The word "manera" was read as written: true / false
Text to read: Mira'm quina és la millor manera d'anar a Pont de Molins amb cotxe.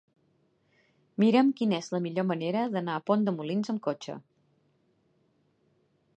true